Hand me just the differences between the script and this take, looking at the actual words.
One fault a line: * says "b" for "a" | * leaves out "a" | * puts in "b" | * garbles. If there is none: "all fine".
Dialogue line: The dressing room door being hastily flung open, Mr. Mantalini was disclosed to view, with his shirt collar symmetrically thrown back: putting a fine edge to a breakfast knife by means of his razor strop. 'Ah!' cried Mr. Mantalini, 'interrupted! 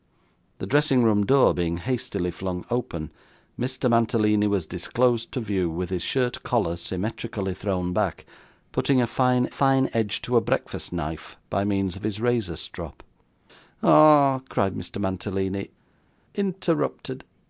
* puts in "fine"